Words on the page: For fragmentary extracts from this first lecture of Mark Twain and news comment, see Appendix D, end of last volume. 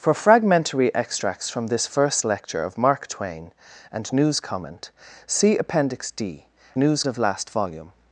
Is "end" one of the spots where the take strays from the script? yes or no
yes